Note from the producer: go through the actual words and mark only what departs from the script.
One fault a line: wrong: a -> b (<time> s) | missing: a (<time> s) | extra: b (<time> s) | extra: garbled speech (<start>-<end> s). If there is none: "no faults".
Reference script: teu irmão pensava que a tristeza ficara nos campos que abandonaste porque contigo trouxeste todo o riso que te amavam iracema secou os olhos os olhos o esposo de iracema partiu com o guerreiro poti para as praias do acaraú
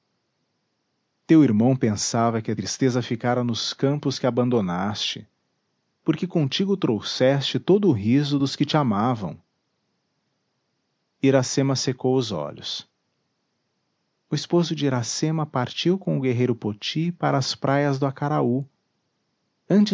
extra: dos (8.4 s)
missing: os olhos (12.9 s)